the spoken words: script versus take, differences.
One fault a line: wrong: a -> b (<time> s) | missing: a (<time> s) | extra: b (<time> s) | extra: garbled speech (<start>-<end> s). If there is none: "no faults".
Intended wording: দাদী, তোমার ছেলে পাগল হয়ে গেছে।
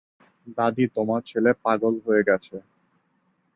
no faults